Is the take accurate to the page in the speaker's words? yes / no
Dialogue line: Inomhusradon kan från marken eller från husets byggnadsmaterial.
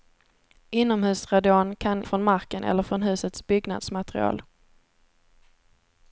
yes